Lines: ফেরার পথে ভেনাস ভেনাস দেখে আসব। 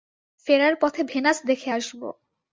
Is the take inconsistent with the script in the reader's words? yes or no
yes